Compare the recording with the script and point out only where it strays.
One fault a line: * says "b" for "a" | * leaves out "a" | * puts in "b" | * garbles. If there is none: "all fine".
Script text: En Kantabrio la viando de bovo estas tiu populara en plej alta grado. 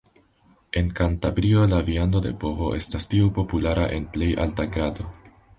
all fine